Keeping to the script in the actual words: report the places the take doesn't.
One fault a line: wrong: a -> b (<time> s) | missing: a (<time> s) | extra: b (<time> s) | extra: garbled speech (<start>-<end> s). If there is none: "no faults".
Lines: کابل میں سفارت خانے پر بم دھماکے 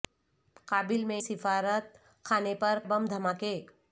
no faults